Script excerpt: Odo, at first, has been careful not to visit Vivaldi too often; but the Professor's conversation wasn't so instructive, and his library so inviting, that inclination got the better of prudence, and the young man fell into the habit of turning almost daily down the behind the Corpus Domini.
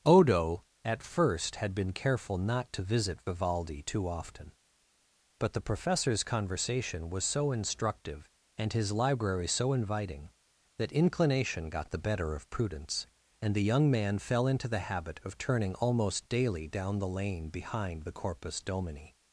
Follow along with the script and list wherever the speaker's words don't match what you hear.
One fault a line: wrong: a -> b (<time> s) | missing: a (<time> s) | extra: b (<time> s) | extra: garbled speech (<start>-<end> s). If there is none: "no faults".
wrong: has -> had (1.6 s)
wrong: wasn't -> was (7.1 s)
extra: lane (17.1 s)